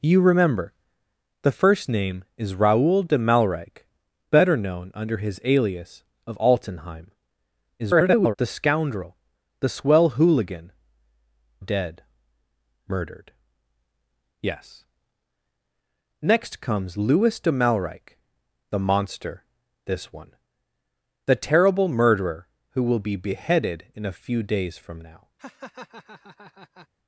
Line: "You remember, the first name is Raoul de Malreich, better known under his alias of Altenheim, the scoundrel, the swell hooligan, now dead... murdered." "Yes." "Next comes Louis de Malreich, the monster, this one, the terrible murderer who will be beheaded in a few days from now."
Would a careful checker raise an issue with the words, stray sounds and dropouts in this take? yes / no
yes